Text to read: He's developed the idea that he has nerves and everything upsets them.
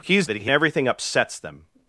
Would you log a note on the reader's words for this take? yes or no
yes